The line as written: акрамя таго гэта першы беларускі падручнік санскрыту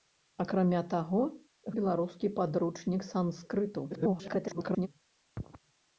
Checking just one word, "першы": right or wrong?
wrong